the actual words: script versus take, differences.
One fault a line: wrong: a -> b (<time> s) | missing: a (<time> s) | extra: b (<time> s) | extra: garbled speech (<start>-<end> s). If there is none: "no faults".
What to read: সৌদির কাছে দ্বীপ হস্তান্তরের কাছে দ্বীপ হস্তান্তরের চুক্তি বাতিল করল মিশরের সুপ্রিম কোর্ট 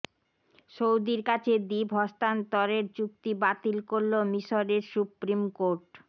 missing: কাছে দ্বীপ হস্তান্তরের (2.9 s)